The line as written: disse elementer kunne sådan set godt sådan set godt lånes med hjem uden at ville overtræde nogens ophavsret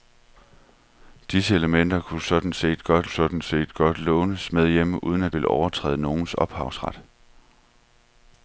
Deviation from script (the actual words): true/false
false